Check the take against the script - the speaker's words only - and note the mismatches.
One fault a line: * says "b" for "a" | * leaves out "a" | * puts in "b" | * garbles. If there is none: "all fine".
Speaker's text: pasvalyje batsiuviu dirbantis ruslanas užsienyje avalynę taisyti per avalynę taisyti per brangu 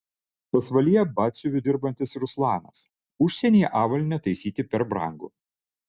* leaves out "avalynę taisyti per"